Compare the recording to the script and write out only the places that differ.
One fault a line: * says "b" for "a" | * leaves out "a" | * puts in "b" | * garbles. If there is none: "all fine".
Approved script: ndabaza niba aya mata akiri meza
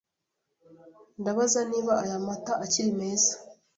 all fine